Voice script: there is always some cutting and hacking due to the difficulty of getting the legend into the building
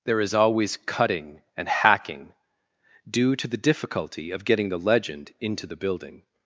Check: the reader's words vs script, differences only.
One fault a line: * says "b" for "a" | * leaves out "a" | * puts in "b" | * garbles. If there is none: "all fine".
* leaves out "some"